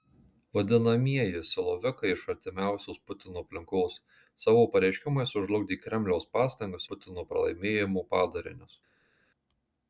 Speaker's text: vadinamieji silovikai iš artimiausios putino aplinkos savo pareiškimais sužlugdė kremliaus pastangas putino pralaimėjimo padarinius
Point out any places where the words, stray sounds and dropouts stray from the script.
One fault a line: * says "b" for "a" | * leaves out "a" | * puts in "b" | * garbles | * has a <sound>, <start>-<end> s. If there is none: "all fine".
all fine